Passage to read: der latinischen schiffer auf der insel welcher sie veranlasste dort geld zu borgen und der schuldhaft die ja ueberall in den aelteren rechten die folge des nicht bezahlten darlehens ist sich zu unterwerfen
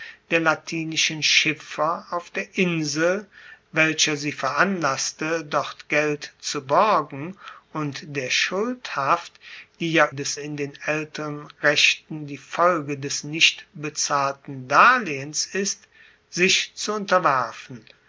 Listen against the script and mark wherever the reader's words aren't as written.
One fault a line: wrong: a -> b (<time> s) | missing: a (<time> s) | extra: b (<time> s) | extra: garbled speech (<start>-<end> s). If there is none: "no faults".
wrong: ueberall -> des (10.1 s)